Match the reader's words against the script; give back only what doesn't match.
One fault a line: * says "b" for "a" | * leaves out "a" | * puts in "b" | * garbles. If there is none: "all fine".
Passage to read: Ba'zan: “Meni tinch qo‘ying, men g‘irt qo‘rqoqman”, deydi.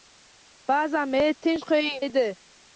* leaves out "men g‘irt qo‘rqoqman"